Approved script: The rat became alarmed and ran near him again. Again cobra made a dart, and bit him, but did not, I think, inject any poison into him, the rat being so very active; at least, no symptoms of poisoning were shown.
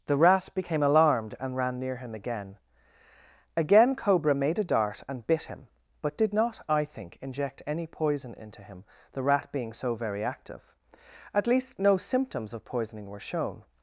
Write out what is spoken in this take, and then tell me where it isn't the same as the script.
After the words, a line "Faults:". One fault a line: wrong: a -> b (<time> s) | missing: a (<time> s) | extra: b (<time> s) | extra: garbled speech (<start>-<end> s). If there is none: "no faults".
The rat became alarmed and ran near him again. Again cobra made a dart, and bit him, but did not, I think, inject any poison into him, the rat being so very active; at least, no symptoms of poisoning were shown.
Faults:
no faults